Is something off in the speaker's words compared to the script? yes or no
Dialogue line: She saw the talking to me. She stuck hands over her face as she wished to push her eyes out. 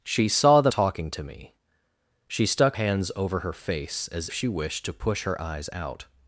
no